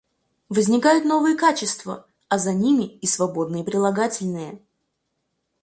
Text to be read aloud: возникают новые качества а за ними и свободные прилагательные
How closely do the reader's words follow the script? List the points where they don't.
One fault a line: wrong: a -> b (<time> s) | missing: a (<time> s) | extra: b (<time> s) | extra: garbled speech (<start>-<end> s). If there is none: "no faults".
no faults